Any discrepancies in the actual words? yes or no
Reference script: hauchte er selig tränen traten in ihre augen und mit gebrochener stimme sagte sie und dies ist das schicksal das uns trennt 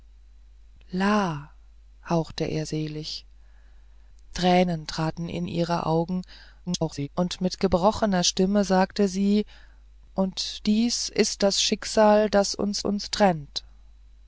yes